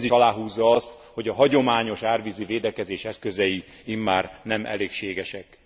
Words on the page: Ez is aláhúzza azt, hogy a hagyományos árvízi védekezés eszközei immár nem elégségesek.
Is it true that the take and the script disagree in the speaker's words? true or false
true